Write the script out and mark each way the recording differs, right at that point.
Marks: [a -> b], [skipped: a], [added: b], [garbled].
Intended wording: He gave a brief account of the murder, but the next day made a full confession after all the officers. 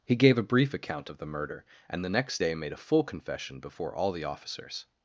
He gave a brief account of the murder, [but -> and] the next day made a full confession [after -> before] all the officers.